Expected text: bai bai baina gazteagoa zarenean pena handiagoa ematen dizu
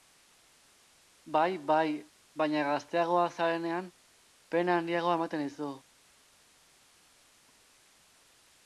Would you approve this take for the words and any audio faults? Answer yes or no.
yes